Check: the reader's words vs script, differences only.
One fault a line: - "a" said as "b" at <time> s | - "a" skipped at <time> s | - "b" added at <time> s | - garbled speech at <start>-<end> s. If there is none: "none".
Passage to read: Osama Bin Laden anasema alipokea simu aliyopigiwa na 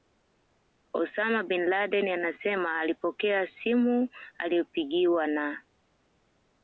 none